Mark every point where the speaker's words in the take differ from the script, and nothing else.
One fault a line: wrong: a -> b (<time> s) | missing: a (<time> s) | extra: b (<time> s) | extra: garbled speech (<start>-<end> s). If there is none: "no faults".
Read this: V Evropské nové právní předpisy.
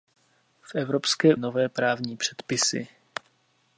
no faults